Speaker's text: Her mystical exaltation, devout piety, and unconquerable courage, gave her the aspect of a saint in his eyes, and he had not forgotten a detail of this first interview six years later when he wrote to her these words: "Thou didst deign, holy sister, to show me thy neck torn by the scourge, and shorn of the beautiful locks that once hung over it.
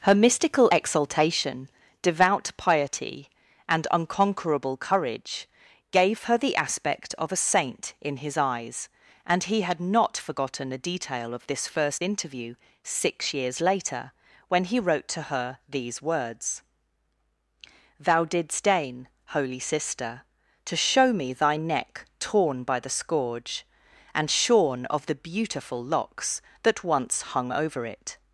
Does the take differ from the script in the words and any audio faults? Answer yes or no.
no